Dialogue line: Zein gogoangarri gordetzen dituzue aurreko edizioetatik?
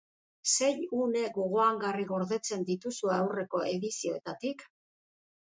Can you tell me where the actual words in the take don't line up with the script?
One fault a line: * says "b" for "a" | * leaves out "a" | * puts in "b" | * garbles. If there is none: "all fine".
* puts in "une"